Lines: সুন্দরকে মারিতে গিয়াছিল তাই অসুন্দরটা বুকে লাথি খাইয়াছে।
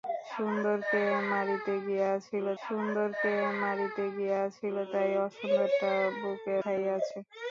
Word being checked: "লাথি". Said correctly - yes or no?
no